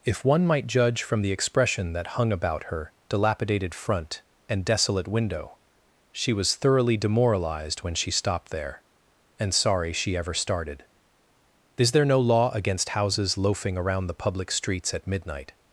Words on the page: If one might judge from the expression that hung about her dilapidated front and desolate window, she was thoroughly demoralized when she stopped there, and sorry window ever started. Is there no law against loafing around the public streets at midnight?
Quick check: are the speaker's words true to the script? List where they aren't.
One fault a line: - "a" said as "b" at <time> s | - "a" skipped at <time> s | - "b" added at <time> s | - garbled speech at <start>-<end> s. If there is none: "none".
- "window" said as "she" at 9.9 s
- "houses" added at 12.9 s